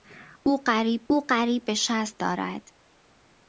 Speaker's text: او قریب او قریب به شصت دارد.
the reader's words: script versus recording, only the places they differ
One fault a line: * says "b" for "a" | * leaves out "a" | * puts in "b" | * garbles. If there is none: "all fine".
all fine